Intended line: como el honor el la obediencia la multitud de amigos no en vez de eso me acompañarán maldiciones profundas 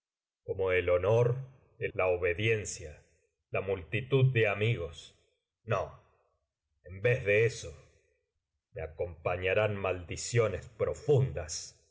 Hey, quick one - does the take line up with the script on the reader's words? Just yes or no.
yes